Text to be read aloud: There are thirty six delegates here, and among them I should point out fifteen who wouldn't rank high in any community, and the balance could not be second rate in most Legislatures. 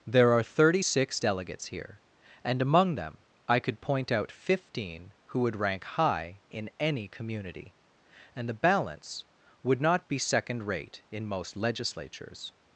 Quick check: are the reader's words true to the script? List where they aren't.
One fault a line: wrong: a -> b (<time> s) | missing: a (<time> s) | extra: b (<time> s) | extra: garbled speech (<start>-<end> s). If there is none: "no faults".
wrong: should -> could (3.6 s)
wrong: wouldn't -> would (5.4 s)
wrong: could -> would (9.6 s)